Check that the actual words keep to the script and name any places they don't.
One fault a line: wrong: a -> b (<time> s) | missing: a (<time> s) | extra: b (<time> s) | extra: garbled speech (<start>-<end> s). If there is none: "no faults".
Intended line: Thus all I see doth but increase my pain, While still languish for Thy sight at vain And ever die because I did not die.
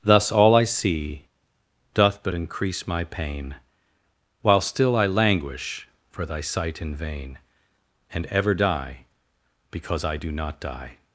extra: I (5.0 s)
wrong: at -> in (6.8 s)
wrong: did -> do (10.1 s)